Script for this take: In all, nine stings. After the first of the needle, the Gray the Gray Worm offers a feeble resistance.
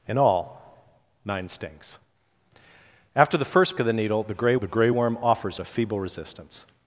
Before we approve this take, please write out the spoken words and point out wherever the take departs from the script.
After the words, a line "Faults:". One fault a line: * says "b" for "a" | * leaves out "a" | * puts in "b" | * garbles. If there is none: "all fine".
In all, nine stings. After the first of the needle, the Gray the Gray Worm offers a feeble resistance.
Faults:
all fine